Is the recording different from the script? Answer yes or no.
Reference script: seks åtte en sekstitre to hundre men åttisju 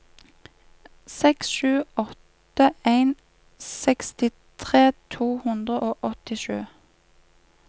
yes